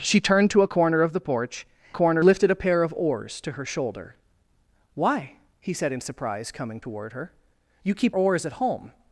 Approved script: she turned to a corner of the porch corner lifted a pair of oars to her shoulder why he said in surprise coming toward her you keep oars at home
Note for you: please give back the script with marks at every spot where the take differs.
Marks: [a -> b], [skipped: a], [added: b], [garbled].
she turned to a corner of the porch corner lifted a pair of oars to her shoulder why he said in surprise coming toward her you keep oars at home